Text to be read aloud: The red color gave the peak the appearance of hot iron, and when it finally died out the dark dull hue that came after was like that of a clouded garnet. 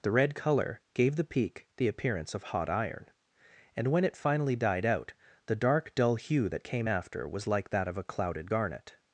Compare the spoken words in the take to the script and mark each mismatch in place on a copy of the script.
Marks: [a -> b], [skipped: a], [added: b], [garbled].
The red color gave the peak the appearance of hot iron, and when it finally died out the dark dull hue that came after was like that of a clouded garnet.